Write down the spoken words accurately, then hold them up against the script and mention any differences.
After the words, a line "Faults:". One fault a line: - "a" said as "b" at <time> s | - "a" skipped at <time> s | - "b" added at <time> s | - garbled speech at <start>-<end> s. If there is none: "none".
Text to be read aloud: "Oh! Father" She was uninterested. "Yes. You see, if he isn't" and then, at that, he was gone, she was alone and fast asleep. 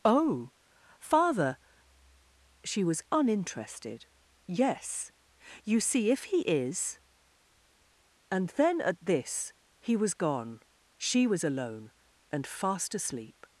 "Oh! Father" She was uninterested. "Yes. You see, if he is" and then, at this, he was gone, she was alone and fast asleep.
Faults:
- "isn't" said as "is" at 6.4 s
- "that" said as "this" at 9.0 s